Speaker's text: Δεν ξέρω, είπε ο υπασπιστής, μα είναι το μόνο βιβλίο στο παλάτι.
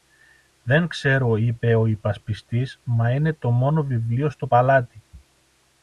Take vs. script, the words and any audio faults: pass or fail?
pass